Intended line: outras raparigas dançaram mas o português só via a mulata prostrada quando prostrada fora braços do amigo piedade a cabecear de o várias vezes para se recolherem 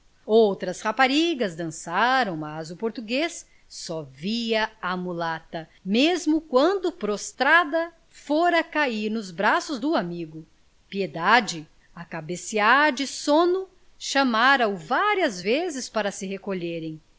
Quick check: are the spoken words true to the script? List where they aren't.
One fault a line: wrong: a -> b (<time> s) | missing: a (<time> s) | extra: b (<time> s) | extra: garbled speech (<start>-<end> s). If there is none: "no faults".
wrong: prostrada -> mesmo (5.8 s)
extra: cair nos (8.6 s)
extra: sono chamara (13.1 s)